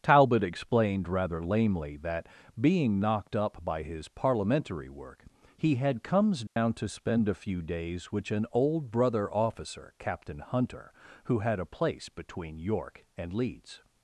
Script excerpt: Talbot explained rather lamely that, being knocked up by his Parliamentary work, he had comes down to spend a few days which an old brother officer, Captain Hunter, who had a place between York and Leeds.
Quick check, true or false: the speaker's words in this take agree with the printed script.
true